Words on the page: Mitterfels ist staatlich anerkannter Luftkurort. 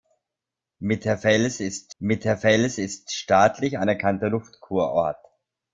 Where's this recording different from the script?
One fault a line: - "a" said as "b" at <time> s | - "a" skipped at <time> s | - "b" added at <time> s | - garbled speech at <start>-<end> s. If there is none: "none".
- "mitterfels ist" added at 2.0 s